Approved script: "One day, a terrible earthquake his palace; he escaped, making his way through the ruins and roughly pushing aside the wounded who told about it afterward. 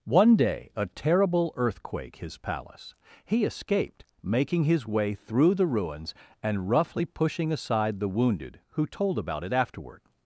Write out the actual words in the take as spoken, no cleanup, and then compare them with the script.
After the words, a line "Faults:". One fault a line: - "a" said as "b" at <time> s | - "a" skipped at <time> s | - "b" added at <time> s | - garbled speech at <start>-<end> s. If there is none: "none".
"One day, a terrible earthquake his palace; he escaped, making his way through the ruins and roughly pushing aside the wounded who told about it afterward.
Faults:
none